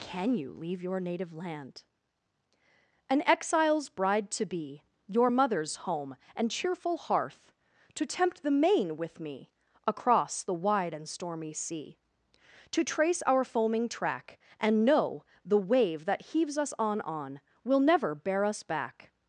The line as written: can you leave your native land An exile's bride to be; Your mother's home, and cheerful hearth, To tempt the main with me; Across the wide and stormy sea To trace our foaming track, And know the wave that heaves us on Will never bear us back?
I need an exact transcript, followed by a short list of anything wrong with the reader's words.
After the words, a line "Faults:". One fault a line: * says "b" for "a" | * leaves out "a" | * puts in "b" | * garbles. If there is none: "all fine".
can you leave your native land An exile's bride to be; Your mother's home, and cheerful hearth, To tempt the main with me; Across the wide and stormy sea To trace our foaming track, And know the wave that heaves us on on Will never bear us back?
Faults:
* puts in "on"